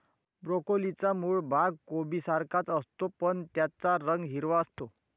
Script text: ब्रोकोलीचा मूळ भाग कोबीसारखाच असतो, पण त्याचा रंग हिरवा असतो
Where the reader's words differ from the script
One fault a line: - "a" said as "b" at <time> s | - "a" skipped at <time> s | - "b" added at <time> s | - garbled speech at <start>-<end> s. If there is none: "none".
none